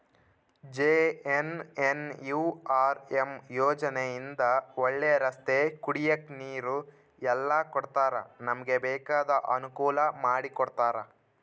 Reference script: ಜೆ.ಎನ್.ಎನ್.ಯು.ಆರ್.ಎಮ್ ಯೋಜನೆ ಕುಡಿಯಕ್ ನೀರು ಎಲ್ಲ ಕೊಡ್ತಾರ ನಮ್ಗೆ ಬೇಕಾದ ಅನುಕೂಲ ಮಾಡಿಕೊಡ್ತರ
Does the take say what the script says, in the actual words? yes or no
no